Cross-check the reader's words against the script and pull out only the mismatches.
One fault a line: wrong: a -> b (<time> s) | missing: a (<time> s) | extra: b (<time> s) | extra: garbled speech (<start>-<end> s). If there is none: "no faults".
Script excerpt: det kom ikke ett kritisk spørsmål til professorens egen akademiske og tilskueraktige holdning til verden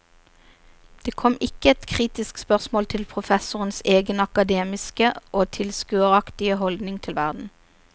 no faults